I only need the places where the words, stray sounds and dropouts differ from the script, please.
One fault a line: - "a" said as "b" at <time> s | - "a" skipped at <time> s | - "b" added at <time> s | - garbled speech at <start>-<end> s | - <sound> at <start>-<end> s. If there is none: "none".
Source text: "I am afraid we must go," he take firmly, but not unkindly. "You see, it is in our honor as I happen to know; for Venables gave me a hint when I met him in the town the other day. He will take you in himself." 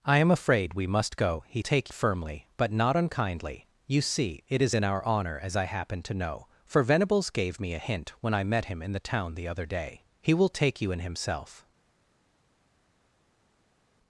none